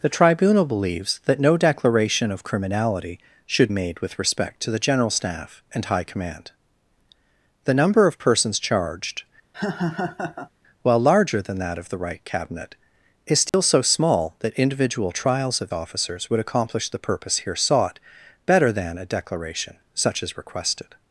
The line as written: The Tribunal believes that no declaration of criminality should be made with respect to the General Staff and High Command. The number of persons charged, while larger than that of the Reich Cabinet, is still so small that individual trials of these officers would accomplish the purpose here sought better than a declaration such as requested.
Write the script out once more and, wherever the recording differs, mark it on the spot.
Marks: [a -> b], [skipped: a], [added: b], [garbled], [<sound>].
The Tribunal believes that no declaration of criminality should [skipped: be] made with respect to the General Staff and High Command. The number of persons charged, [laugh] while larger than that of the Reich Cabinet, is still [dropout] so small that individual trials of [skipped: these] officers would accomplish the purpose here sought better than a declaration such as requested.